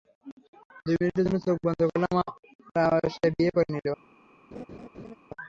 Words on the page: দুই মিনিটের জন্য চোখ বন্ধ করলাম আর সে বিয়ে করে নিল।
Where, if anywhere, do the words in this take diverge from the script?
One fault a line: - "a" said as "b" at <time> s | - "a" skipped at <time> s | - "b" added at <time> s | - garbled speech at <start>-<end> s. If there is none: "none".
none